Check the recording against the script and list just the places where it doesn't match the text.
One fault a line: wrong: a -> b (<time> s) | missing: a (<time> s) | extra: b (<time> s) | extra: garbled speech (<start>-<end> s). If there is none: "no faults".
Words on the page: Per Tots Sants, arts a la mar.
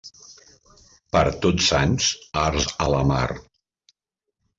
no faults